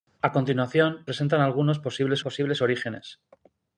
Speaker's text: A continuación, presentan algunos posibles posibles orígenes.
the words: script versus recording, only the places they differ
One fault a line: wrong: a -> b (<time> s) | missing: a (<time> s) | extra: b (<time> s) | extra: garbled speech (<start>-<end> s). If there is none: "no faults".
no faults